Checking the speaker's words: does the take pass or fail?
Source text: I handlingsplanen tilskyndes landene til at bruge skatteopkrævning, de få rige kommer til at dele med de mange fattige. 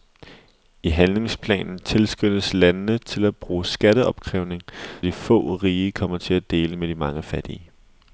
pass